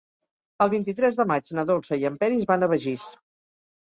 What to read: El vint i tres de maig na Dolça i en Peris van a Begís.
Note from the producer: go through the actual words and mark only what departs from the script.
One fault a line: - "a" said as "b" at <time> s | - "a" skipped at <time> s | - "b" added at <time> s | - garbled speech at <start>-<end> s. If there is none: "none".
none